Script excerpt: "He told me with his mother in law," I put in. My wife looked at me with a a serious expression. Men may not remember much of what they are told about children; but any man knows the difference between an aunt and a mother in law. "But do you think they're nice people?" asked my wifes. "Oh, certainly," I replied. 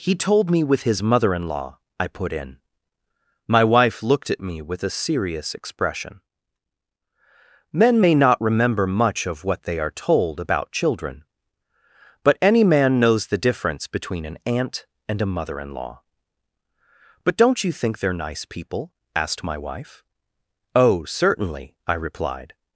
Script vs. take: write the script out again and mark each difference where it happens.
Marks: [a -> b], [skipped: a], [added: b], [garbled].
"He told me with his mother in law," I put in. My wife looked at me with a [skipped: a] serious expression. Men may not remember much of what they are told about children; but any man knows the difference between an aunt and a mother in law. "But [do -> don't] you think they're nice people?" asked my [wifes. -> wife] "Oh, certainly," I replied.